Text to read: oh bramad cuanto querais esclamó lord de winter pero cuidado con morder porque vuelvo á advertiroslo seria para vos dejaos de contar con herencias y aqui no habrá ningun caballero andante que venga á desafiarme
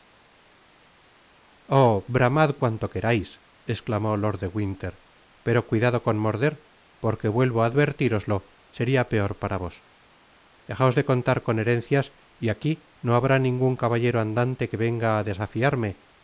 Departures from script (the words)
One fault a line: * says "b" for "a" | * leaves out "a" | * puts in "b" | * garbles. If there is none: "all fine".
* puts in "peor"